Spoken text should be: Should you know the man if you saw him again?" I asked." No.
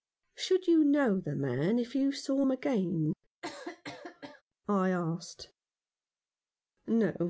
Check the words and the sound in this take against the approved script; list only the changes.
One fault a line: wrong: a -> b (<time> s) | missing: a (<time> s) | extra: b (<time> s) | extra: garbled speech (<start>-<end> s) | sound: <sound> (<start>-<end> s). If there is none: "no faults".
sound: cough (3.4-4.4 s)